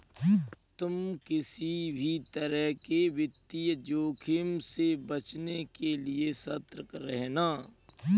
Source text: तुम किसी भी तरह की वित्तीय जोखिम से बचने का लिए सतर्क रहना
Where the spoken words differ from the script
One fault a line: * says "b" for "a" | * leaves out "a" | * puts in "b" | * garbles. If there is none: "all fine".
* says "के" for "की"
* says "के" for "का"